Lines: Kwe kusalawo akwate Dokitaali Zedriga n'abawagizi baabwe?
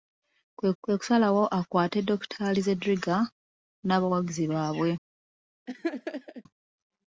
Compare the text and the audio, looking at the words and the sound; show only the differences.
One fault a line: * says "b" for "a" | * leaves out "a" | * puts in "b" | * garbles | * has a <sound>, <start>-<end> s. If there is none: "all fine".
* puts in "kwe"
* has a laugh, 5.7-6.4 s